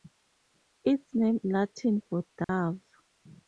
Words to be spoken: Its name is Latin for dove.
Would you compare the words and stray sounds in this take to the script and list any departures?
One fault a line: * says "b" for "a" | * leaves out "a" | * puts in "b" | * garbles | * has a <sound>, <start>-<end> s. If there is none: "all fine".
* leaves out "is"
* has a dropout, 2.4-2.5 s